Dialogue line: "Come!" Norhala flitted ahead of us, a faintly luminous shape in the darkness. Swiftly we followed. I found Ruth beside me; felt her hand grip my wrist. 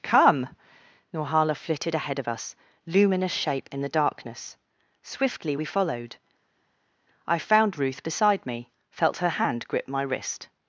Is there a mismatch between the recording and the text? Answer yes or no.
yes